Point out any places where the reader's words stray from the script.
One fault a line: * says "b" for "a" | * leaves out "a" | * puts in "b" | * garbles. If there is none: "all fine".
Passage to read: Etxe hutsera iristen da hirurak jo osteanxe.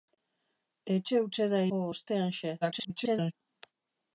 * leaves out "iristen da hirurak"
* garbles